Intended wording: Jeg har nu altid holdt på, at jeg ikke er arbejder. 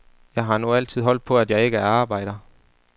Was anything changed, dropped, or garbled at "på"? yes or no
no